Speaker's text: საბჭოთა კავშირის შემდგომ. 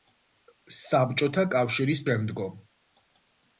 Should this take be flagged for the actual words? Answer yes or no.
no